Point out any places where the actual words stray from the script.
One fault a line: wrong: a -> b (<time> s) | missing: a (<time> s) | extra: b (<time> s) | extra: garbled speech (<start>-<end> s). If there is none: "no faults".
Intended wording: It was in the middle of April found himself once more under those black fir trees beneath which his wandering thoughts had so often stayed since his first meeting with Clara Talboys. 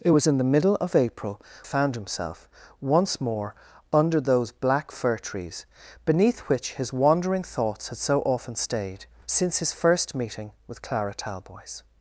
no faults